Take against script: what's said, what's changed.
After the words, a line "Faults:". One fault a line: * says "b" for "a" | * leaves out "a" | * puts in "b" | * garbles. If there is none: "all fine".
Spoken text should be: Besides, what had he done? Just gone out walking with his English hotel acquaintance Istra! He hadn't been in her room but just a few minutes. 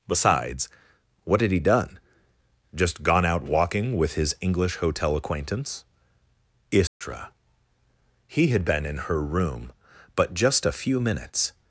Besides, what had he done? Just gone out walking with his English hotel acquaintance Istra! He had been in her room but just a few minutes.
Faults:
* says "had" for "hadn't"